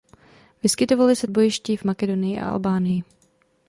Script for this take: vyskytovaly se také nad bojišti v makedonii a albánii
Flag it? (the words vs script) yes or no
yes